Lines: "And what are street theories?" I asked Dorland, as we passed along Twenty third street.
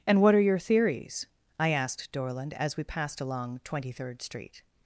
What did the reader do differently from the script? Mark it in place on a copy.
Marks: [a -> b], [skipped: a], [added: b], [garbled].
"And what are [street -> your] theories?" I asked Dorland, as we passed along Twenty third street.